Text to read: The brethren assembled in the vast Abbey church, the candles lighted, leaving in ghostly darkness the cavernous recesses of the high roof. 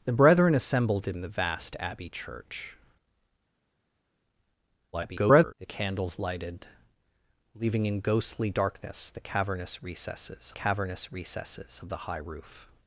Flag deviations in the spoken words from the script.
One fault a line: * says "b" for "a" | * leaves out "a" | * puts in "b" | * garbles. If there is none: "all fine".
* garbles
* puts in "cavernous recesses"